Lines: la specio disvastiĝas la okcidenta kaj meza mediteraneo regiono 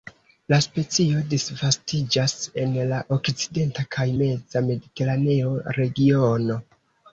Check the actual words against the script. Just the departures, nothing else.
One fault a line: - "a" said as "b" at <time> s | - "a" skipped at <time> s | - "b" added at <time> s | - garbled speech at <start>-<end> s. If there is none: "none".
- "en" added at 2.6 s